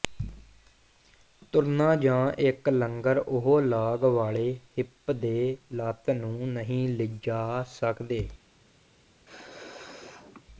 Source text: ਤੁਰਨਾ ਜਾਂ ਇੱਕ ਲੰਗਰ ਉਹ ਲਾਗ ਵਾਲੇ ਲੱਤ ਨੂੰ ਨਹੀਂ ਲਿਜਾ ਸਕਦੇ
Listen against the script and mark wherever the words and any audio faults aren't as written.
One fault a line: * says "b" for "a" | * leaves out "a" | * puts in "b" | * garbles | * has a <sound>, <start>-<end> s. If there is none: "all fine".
* puts in "ਹਿੱਪ ਦੇ"
* has a sneeze, 9.3-10.5 s